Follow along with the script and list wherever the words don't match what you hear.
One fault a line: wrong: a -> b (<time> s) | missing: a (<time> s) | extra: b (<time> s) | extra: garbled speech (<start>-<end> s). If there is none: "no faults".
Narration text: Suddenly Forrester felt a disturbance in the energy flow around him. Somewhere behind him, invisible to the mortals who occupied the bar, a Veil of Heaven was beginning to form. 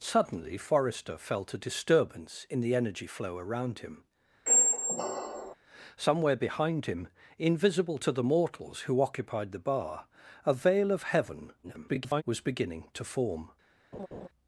extra: garbled speech (11.6-12.2 s)